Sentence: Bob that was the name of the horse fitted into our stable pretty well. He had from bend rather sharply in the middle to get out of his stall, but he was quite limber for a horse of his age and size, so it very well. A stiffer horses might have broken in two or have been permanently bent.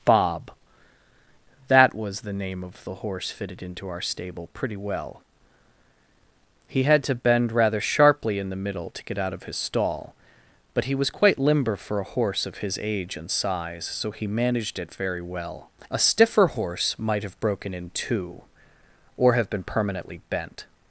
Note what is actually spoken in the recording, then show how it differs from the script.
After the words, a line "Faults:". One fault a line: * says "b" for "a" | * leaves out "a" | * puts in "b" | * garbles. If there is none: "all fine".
Bob that was the name of the horse fitted into our stable pretty well. He had to bend rather sharply in the middle to get out of his stall, but he was quite limber for a horse of his age and size, so he managed it very well. A stiffer horse might have broken in two or have been permanently bent.
Faults:
* says "to" for "from"
* puts in "he managed"
* says "horse" for "horses"